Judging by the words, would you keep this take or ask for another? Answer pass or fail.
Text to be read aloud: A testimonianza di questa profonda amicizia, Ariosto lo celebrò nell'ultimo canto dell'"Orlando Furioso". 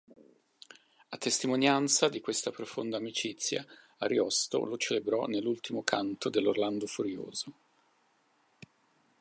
pass